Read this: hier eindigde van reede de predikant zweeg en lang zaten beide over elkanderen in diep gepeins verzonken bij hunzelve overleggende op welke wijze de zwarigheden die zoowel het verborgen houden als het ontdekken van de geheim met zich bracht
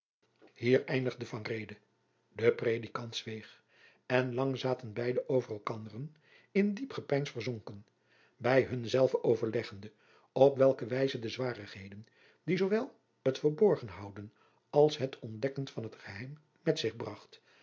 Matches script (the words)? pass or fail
fail